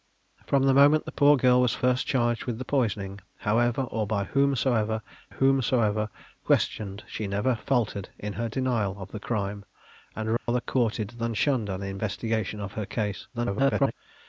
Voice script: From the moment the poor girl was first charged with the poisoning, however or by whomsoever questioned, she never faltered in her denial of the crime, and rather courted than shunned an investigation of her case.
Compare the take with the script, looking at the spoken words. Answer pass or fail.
fail